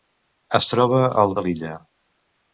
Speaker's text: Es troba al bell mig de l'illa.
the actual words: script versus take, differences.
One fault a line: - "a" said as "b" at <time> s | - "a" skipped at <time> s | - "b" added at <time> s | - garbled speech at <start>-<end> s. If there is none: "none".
- "bell mig" skipped at 1.3 s